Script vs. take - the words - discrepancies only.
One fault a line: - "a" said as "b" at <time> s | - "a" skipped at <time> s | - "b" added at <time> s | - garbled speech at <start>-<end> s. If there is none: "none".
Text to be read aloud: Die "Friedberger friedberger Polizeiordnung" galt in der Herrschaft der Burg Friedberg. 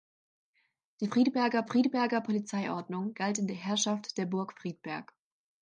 none